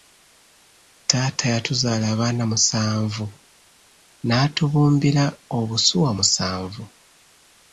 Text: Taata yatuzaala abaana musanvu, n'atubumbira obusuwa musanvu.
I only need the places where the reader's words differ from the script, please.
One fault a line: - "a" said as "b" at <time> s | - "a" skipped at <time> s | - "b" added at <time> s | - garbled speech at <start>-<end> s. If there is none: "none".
none